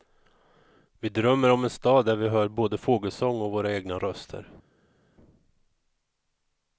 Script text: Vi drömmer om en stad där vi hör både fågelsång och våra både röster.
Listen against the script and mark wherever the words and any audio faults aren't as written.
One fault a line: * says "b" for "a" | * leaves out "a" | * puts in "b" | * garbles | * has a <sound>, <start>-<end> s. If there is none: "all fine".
* says "egna" for "både"